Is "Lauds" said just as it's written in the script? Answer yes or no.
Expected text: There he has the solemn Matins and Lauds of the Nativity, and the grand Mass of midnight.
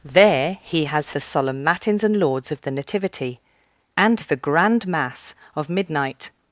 yes